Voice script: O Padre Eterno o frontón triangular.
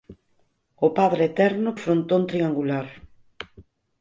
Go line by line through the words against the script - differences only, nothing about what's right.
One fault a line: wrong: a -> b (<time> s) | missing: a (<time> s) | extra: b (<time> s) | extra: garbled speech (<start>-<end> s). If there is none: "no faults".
no faults